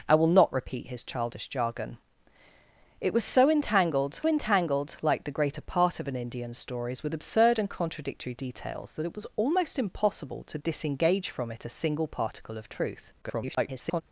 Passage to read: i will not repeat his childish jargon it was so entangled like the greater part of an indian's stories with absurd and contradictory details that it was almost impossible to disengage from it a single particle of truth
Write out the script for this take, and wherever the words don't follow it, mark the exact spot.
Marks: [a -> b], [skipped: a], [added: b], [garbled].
i will not repeat his childish jargon it was so entangled [added: entangled] like the greater part of an indian's stories with absurd and contradictory details that it was almost impossible to disengage from it a single particle of truth [garbled]